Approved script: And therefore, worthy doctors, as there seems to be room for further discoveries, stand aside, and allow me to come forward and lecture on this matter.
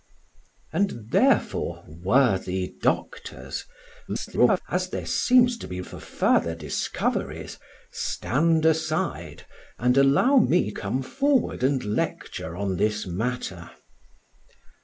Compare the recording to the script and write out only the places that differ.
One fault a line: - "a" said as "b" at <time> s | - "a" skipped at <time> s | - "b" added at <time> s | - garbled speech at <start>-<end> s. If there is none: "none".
- garbled speech at 4.1-4.6 s
- "room" skipped at 5.8 s
- "to" skipped at 10.7 s